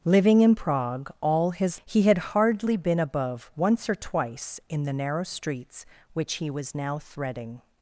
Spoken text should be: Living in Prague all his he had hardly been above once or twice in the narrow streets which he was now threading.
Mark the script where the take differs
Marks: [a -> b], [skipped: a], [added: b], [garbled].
Living in Prague all his he had hardly been above once or twice in the narrow streets which he was now threading.